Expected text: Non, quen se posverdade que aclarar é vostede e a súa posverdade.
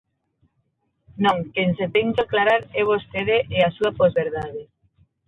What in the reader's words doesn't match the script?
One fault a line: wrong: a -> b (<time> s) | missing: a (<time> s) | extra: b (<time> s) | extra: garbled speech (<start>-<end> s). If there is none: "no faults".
wrong: posverdade -> ten (1.9 s)